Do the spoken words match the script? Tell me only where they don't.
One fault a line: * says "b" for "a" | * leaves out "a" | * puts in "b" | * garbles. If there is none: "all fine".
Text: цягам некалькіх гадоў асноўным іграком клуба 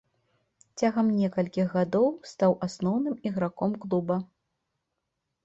* puts in "стаў"